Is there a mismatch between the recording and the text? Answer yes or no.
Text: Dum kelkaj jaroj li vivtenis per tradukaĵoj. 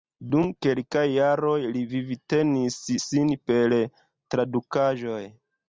yes